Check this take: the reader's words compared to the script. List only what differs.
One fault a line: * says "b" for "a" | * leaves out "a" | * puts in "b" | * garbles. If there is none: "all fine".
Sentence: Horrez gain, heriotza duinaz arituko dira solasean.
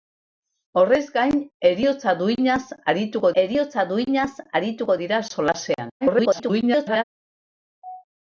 * puts in "heriotza duinaz arituko"
* garbles